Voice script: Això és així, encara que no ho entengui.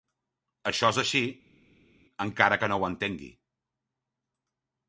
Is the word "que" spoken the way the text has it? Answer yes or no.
yes